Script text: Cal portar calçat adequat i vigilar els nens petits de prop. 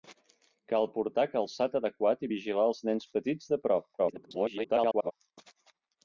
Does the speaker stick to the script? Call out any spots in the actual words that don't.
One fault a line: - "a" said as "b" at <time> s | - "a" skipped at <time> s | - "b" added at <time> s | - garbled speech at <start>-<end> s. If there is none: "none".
- garbled speech at 4.0-5.1 s